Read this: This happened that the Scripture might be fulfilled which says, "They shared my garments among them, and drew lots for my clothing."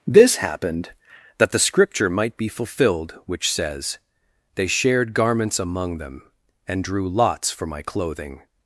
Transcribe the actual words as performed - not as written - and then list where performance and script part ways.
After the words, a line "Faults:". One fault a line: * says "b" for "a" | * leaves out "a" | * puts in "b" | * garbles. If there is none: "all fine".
This happened that the Scripture might be fulfilled which says, "They shared garments among them, and drew lots for my clothing."
Faults:
* leaves out "my"